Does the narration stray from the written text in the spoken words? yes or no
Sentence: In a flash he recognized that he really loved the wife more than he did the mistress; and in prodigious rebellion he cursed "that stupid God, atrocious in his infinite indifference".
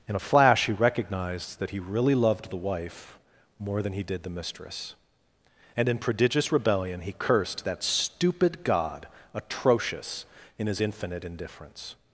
no